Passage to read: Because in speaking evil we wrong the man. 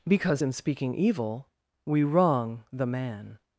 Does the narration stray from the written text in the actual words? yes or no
no